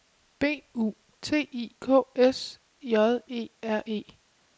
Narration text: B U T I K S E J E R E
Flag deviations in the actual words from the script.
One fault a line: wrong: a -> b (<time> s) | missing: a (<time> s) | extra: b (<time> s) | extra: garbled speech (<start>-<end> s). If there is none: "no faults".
missing: E (2.6 s)